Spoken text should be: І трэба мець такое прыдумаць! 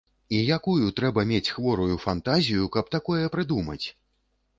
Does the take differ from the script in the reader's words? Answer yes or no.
yes